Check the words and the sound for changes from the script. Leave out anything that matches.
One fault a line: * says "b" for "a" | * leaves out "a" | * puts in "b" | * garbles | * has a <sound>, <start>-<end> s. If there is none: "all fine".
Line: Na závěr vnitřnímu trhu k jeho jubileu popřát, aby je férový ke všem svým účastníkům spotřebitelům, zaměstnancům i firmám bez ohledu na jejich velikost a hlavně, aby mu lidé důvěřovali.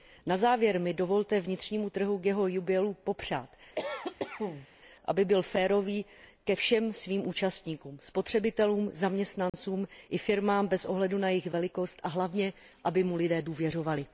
* puts in "mi dovolte"
* has a cough, 3.8-4.7 s
* says "byl" for "je"
* has a dropout, 9.5-9.5 s